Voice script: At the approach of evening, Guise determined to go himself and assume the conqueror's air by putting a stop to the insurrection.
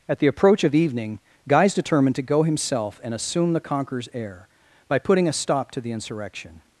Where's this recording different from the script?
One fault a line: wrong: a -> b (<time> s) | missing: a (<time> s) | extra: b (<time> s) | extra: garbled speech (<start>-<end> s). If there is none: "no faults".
no faults